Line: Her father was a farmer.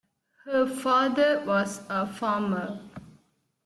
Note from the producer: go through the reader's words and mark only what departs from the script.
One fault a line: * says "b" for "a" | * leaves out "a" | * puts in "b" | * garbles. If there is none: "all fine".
all fine